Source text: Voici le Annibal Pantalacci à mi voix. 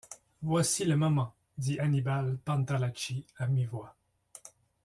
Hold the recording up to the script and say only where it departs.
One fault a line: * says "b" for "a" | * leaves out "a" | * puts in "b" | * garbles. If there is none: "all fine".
* puts in "moment dit"